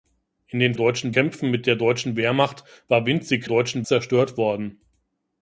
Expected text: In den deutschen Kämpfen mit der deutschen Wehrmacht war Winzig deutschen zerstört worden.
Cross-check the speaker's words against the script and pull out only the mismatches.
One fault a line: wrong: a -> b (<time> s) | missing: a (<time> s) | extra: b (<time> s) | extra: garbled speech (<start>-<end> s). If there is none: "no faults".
no faults